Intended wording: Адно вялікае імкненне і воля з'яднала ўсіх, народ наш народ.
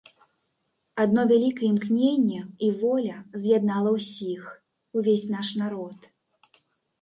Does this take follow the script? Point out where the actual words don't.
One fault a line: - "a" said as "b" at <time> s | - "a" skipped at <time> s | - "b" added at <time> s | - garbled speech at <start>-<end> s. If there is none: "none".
- "народ" said as "увесь" at 5.0 s